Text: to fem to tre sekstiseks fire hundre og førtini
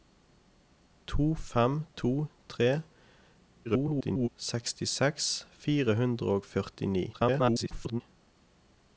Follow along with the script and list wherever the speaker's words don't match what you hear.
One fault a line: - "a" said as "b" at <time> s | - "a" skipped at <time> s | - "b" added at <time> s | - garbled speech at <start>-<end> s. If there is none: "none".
- garbled speech at 3.6-4.3 s
- garbled speech at 7.1-8.0 s